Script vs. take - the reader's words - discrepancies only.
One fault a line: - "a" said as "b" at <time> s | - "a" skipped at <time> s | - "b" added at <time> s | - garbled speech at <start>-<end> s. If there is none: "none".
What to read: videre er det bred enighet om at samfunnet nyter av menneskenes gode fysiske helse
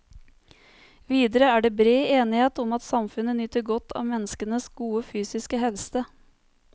- "godt" added at 3.7 s